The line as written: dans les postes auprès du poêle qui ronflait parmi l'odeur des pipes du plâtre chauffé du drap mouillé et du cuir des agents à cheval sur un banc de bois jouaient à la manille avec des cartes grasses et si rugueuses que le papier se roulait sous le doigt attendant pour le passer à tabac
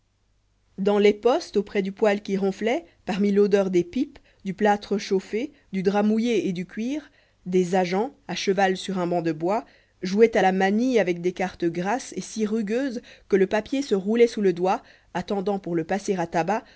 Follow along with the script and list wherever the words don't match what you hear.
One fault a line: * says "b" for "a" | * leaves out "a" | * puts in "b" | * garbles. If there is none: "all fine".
all fine